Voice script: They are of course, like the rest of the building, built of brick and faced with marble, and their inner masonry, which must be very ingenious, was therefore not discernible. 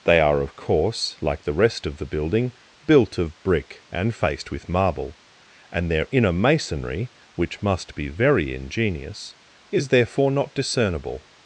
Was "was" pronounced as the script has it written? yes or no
no